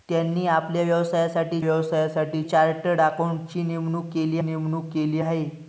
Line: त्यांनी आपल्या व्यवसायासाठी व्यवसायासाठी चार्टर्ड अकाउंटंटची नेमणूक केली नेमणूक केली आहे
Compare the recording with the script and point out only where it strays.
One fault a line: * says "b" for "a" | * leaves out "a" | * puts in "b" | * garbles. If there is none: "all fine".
all fine